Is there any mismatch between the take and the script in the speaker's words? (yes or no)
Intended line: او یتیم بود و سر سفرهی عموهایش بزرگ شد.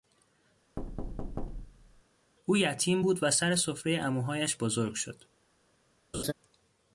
no